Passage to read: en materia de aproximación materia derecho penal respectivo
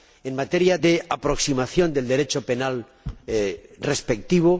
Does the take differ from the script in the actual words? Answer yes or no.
yes